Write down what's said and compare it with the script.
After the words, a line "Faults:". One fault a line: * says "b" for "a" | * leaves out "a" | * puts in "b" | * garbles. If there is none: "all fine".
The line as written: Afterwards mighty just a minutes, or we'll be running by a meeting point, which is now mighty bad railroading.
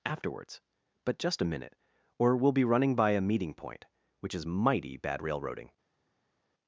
Afterwards but just a minute, or we'll be running by a meeting point, which is mighty bad railroading.
Faults:
* says "but" for "mighty"
* says "minute" for "minutes"
* leaves out "now"